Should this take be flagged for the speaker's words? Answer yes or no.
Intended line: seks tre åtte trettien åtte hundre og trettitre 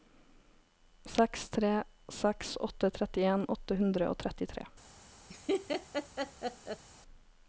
yes